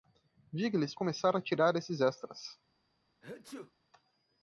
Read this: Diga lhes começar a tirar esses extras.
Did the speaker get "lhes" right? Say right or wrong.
right